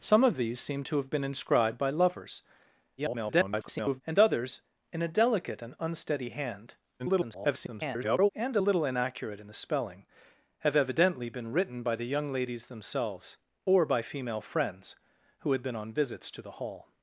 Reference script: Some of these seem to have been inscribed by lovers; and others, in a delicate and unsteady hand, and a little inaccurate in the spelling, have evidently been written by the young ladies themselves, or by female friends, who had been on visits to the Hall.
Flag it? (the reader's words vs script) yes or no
yes